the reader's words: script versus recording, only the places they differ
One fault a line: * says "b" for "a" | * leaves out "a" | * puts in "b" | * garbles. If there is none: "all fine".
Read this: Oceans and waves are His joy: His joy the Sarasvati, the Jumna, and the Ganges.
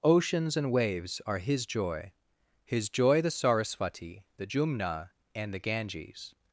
all fine